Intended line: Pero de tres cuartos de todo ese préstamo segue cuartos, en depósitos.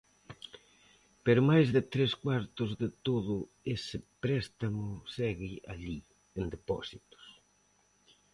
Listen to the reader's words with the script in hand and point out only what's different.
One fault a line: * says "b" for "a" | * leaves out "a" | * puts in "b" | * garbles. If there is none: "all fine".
* puts in "máis"
* says "alí" for "cuartos"